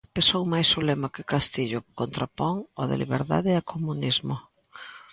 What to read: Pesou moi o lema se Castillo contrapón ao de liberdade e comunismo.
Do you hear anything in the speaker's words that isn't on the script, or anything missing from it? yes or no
yes